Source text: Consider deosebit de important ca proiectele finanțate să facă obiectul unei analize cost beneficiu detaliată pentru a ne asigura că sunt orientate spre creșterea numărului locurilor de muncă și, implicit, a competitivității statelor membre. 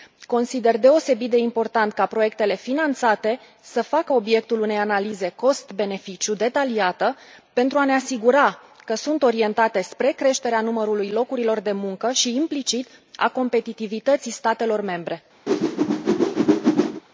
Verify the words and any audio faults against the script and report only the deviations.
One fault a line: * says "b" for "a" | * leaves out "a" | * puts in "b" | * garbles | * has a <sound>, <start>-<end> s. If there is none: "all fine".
* has a whoosh, 15.5-17.0 s